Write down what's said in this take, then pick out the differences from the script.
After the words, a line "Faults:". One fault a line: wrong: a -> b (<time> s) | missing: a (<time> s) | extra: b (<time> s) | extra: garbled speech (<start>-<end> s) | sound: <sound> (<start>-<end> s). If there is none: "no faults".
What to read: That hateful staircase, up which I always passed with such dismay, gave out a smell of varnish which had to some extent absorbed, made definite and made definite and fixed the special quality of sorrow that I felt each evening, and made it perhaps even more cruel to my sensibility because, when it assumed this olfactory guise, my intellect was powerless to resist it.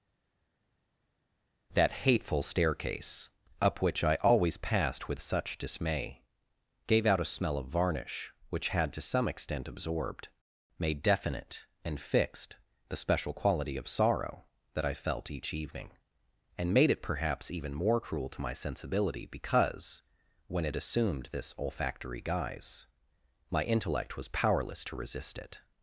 That hateful staircase, up which I always passed with such dismay, gave out a smell of varnish which had to some extent absorbed, made definite and fixed the special quality of sorrow that I felt each evening, and made it perhaps even more cruel to my sensibility because, when it assumed this olfactory guise, my intellect was powerless to resist it.
Faults:
missing: made definite and (12.0 s)